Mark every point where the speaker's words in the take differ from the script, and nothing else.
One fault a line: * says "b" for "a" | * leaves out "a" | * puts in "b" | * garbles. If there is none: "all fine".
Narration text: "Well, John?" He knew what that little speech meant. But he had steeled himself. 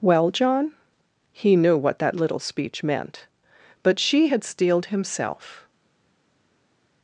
* says "she" for "he"